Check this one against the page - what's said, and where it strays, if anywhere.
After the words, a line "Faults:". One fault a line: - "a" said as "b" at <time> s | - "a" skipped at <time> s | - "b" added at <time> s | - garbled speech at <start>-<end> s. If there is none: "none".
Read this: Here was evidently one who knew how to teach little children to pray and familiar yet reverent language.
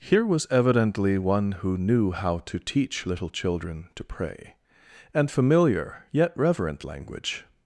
Here was evidently one who knew how to teach little children to pray and familiar yet reverent language.
Faults:
none